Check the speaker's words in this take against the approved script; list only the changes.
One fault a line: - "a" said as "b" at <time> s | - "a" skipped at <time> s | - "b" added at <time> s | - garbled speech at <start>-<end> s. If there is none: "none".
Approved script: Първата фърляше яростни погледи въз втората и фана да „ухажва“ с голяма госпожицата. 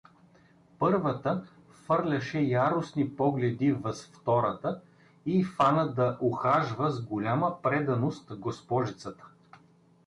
- "преданост" added at 7.6 s